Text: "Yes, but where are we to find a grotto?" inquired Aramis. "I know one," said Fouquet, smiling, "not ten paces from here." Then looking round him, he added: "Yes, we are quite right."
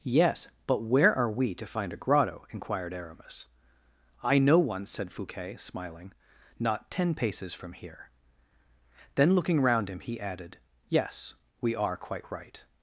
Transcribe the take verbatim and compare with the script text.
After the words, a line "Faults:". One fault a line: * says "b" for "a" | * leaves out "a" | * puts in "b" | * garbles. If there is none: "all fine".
"Yes, but where are we to find a grotto?" inquired Aramis. "I know one," said Fouquet, smiling, "not ten paces from here." Then looking round him, he added: "Yes, we are quite right."
Faults:
all fine